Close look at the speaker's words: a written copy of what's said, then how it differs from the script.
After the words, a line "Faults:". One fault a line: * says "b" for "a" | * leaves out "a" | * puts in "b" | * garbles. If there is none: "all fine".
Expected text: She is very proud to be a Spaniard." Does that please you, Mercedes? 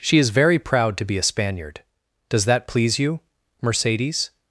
She is very proud to be a Spaniard." Does that please you, Mercedes?
Faults:
all fine